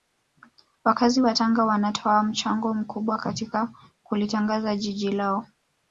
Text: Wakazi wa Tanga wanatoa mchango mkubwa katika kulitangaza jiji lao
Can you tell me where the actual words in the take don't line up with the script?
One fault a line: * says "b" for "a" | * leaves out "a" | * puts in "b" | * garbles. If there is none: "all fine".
all fine